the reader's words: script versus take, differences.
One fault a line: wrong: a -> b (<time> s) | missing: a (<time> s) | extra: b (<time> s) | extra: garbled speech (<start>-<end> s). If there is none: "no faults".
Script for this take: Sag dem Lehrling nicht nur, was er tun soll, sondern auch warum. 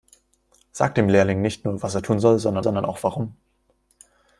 extra: sondern (2.6 s)